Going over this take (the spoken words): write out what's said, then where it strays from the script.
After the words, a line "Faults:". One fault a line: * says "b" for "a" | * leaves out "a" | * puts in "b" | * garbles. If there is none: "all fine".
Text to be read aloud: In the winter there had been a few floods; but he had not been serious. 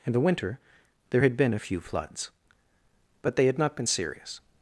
In the winter there had been a few floods; but they had not been serious.
Faults:
* says "they" for "he"